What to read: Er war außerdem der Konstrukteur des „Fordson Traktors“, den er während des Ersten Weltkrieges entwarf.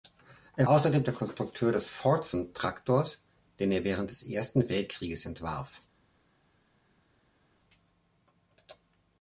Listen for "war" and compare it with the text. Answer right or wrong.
wrong